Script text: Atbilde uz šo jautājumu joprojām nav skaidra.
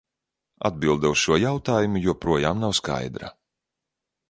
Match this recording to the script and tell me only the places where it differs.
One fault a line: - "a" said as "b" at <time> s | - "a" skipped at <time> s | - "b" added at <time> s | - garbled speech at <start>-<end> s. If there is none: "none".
none